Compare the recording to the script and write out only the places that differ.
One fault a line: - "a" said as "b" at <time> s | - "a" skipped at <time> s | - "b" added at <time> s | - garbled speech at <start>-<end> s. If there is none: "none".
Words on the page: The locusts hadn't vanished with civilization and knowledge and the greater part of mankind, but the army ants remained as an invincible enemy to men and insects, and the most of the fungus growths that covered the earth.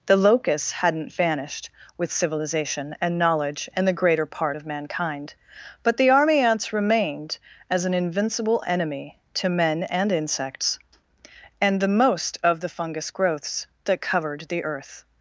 none